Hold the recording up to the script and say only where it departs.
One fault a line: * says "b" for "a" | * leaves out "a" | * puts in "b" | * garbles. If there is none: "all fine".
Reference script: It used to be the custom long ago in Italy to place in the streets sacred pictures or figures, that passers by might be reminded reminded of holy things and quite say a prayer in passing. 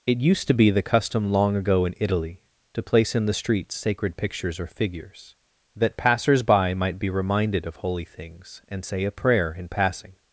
* leaves out "reminded"
* leaves out "quite"